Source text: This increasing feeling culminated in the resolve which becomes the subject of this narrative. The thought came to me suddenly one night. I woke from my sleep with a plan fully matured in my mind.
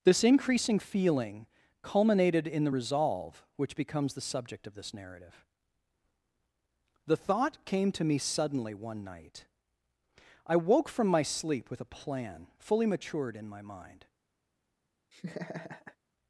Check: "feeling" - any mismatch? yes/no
no